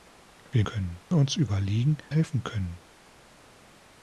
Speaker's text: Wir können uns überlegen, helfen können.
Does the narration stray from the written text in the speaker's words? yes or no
no